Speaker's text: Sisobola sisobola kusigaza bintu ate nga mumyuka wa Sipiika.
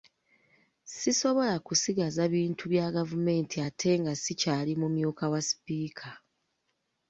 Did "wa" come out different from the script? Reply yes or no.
no